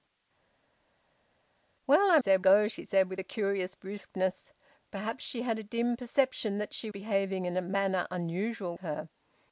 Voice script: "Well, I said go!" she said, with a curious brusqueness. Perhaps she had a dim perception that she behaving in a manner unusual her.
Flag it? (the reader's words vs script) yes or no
no